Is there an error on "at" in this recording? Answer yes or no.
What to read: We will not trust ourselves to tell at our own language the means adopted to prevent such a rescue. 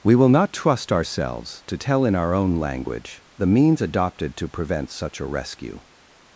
yes